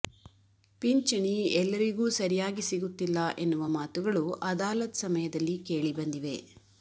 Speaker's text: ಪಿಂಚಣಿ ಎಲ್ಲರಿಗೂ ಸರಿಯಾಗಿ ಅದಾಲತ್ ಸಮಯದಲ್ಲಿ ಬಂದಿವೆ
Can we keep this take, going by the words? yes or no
no